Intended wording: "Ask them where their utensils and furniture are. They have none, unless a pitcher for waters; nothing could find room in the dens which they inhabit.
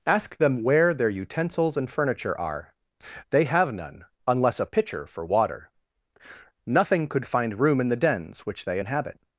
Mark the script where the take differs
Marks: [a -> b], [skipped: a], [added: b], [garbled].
"Ask them where their utensils and furniture are. They have none, unless a pitcher for [waters; -> water] nothing could find room in the dens which they inhabit.